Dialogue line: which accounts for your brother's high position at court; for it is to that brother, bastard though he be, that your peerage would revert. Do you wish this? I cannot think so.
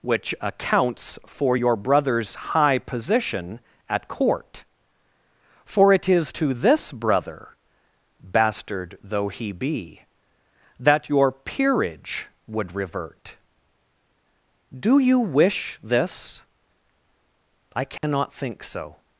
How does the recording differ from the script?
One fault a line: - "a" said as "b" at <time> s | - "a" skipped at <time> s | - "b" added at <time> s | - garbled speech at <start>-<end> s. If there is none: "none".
- "that" said as "this" at 6.5 s